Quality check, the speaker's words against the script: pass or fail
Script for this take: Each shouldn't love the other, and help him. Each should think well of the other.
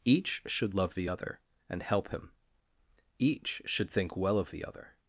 fail